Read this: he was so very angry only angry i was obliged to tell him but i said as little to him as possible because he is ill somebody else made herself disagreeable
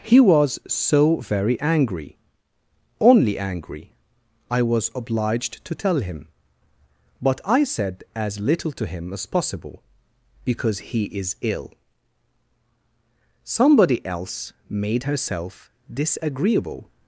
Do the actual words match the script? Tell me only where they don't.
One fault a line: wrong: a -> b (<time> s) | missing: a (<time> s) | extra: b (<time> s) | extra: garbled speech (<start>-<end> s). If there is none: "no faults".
no faults